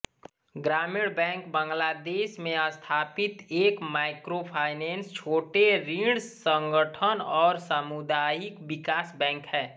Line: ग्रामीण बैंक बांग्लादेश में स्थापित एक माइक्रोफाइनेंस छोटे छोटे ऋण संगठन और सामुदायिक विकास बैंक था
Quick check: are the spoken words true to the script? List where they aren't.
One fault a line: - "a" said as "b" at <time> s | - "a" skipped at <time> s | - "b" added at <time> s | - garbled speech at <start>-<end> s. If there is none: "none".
- "छोटे" skipped at 5.7 s
- "था" said as "है" at 9.5 s